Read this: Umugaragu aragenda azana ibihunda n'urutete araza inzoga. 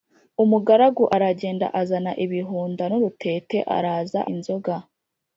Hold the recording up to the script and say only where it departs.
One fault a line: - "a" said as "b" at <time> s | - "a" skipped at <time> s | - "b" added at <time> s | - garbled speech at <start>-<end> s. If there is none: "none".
none